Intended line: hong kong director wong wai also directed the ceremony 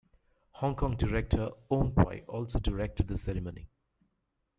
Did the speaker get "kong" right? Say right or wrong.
right